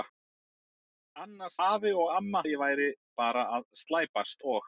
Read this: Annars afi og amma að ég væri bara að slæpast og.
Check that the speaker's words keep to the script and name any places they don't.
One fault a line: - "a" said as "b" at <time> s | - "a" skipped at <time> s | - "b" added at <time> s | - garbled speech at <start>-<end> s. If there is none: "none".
none